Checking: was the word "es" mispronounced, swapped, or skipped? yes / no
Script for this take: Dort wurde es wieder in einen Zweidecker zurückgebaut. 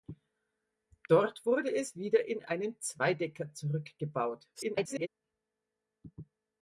no